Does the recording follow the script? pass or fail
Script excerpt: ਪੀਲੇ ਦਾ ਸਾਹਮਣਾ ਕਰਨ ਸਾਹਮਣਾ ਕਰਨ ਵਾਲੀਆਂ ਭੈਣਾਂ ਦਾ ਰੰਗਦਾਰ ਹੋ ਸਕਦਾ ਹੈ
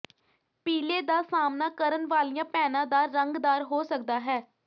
fail